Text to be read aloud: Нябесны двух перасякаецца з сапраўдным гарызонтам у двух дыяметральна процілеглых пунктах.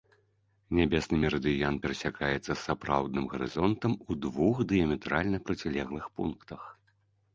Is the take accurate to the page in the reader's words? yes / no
no